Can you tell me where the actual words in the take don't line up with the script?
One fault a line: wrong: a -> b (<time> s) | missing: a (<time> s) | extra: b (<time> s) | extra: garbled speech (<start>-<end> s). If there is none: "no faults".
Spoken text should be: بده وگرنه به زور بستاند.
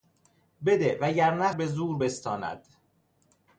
no faults